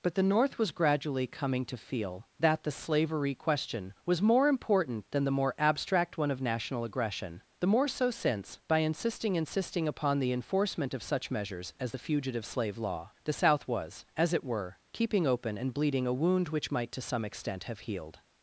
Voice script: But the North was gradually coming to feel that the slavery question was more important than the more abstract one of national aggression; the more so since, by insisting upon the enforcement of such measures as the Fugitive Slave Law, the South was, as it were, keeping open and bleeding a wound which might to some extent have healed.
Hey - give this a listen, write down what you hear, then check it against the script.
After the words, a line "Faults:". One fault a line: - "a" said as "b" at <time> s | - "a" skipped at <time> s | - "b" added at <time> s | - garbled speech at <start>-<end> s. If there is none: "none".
But the North was gradually coming to feel that the slavery question was more important than the more abstract one of national aggression; the more so since, by insisting insisting upon the enforcement of such measures as the Fugitive Slave Law, the South was, as it were, keeping open and bleeding a wound which might to some extent have healed.
Faults:
- "insisting" added at 9.3 s